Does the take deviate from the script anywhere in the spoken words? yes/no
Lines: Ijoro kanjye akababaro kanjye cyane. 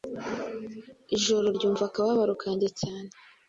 yes